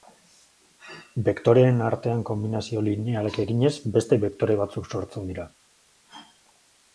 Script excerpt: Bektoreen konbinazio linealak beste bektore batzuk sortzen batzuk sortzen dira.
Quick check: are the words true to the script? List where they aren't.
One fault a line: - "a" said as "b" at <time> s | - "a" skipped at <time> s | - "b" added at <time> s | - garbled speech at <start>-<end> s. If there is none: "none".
- "artean" added at 1.9 s
- "eginez" added at 3.4 s
- "batzuk sortzen" skipped at 5.3 s